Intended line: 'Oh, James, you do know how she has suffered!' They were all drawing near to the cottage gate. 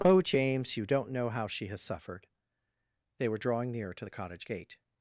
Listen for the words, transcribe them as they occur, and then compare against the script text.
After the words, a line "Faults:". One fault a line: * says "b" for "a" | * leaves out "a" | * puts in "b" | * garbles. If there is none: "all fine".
'Oh, James, you don't know how she has suffered!' They were drawing near to the cottage gate.
Faults:
* says "don't" for "do"
* leaves out "all"